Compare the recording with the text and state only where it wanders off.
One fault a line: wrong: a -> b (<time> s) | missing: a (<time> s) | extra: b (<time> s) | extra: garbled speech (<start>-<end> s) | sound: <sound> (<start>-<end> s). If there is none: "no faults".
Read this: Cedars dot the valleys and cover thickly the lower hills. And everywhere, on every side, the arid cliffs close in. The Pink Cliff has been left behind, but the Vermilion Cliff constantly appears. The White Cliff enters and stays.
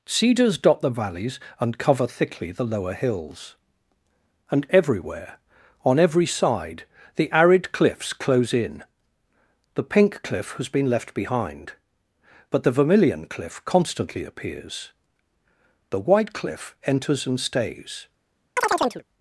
sound: chirp (18.6-19.0 s)